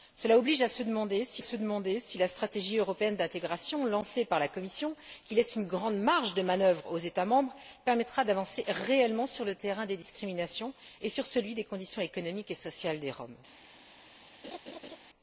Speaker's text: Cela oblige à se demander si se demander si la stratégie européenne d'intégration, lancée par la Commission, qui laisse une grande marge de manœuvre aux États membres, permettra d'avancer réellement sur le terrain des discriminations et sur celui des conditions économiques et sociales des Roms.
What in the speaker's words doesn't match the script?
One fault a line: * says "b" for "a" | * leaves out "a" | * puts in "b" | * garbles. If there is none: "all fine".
all fine